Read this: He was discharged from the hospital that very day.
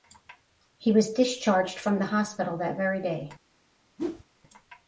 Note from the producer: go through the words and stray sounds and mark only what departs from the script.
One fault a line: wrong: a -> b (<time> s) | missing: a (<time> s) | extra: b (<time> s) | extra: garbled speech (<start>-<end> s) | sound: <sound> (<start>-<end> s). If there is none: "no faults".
sound: whoosh (4.0-4.2 s)